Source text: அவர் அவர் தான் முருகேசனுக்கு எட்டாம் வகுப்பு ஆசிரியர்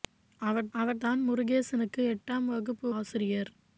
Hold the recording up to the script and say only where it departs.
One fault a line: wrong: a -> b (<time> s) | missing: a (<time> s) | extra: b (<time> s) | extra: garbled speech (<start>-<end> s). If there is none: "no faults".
no faults